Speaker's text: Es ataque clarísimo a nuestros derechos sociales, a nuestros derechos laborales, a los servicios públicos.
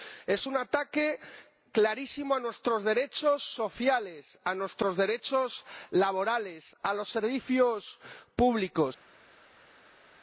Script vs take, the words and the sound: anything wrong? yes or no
yes